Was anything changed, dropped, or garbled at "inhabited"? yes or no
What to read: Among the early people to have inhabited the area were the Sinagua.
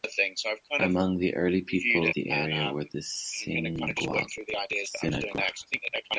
yes